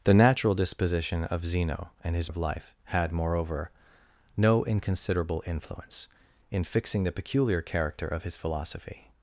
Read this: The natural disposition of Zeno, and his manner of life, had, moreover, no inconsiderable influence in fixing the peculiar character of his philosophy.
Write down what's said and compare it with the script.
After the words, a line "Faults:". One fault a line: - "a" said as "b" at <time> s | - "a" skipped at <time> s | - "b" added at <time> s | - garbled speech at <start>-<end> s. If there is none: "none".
The natural disposition of Zeno, and his of life, had, moreover, no inconsiderable influence in fixing the peculiar character of his philosophy.
Faults:
- "manner" skipped at 2.3 s